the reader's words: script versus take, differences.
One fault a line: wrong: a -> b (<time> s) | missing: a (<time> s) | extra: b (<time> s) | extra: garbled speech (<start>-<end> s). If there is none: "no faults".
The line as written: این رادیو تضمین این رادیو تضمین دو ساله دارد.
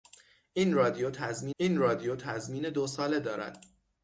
no faults